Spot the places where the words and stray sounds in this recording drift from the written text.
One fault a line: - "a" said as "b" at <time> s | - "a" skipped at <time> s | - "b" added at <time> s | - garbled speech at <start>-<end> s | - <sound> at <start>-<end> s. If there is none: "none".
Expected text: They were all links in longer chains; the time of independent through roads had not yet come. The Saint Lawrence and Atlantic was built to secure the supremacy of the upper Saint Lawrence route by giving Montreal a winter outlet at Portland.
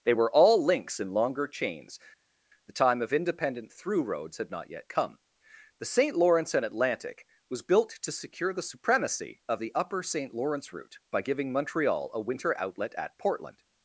none